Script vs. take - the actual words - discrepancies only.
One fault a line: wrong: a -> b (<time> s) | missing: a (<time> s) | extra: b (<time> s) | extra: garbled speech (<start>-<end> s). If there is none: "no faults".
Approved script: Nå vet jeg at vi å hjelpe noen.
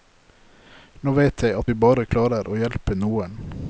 extra: bare klarer (1.8 s)